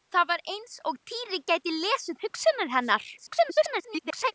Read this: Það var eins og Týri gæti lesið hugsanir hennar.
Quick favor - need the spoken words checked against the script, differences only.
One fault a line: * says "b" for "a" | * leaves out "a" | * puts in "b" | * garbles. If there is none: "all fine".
* garbles